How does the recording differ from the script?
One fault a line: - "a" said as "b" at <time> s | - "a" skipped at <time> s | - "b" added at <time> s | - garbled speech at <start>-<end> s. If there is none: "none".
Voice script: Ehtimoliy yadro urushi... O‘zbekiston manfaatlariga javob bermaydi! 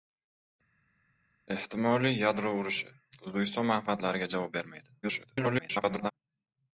- garbled speech at 5.0-6.1 s